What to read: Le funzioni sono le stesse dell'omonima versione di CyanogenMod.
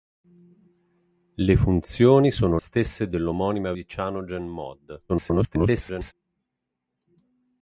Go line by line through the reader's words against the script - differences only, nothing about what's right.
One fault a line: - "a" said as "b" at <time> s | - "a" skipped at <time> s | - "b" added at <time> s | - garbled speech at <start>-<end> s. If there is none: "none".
- "le" skipped at 2.6 s
- "versione" skipped at 3.7 s
- garbled speech at 5.1-6.1 s